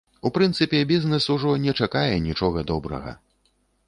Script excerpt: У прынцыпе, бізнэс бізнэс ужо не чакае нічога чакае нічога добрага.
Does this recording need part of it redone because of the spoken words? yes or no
yes